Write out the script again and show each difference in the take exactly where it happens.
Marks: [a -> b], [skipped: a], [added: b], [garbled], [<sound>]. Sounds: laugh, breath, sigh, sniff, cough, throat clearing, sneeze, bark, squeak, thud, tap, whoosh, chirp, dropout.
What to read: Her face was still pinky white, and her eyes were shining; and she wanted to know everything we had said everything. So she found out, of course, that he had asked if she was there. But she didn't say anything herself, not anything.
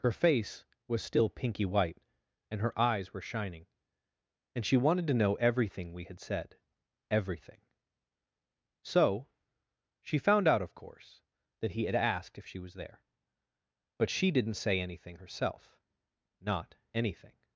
Her face was still pinky white, and her eyes were shining; and she wanted to know everything we had said everything. So she found out, of course, that he had asked if she was there. But she didn't say anything herself, not anything.